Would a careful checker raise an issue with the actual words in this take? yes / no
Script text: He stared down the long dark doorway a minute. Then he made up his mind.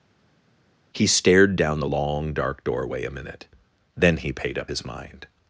yes